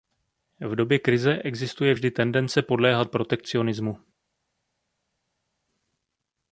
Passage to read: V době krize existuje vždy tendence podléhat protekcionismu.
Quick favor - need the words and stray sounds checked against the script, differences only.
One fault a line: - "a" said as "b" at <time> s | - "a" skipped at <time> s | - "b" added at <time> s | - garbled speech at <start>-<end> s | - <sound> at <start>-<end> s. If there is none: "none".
none